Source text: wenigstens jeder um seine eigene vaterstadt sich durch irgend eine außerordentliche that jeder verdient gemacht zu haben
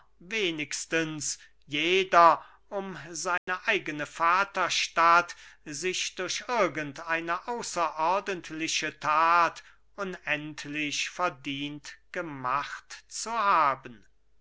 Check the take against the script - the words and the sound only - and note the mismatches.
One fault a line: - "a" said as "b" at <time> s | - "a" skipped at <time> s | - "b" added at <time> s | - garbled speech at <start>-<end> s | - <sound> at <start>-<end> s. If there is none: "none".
- dropout at 3.4-3.5 s
- "jeder" said as "unendlich" at 10.0 s